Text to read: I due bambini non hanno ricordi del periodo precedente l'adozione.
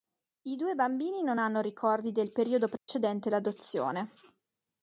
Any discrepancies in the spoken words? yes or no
no